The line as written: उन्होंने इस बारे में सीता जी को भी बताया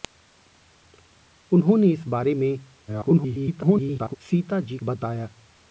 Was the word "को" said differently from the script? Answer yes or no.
yes